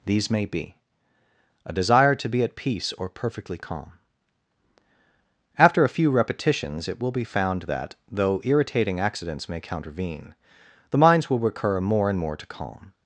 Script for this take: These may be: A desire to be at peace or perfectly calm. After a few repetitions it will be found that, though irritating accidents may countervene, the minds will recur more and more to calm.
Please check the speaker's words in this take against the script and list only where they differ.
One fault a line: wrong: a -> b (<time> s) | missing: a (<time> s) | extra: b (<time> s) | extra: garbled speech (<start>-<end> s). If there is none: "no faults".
no faults